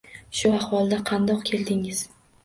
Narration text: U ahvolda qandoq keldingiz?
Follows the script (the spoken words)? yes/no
no